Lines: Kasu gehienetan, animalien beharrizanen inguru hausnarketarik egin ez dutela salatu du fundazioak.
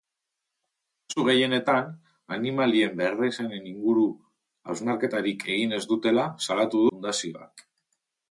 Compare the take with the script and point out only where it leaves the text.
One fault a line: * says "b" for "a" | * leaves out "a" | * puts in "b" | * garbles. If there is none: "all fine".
* leaves out "du"